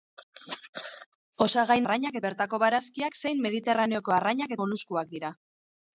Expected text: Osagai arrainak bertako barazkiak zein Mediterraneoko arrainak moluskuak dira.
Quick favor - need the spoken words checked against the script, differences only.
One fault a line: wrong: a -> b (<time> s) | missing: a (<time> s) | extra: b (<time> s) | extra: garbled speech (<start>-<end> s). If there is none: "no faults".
no faults